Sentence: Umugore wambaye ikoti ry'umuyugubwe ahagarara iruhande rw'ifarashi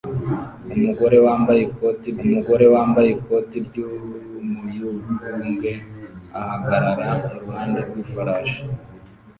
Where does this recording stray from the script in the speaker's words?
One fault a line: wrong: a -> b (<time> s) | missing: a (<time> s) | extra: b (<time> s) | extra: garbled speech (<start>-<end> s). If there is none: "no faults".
extra: umugore wambaye ikoti (2.2 s)